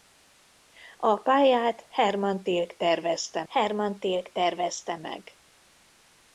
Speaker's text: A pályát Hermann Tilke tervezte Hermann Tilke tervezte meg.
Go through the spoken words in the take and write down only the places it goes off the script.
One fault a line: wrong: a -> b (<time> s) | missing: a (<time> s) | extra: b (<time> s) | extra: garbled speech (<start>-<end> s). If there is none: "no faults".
no faults